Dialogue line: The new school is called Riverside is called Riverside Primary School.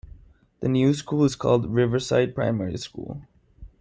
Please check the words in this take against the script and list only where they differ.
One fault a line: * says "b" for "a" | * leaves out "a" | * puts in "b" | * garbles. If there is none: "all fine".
* leaves out "is called Riverside"